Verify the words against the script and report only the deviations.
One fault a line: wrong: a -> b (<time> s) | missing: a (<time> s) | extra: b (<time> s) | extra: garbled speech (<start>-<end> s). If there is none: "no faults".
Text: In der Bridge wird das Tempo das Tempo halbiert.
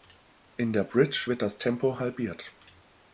missing: das Tempo (2.0 s)